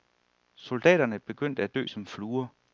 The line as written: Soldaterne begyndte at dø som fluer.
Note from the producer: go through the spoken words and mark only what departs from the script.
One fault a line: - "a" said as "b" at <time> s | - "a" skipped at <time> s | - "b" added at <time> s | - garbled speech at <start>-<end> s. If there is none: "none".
none